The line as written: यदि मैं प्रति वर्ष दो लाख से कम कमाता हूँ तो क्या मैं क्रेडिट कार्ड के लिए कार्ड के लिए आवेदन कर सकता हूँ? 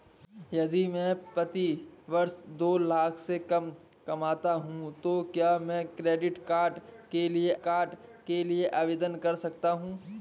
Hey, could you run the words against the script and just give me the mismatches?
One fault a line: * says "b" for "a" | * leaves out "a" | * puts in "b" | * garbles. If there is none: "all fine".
all fine